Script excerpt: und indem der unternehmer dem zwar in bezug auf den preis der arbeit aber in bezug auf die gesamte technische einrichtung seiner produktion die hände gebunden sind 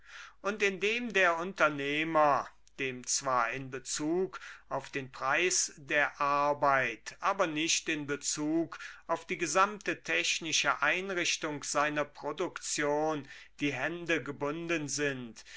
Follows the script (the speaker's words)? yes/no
no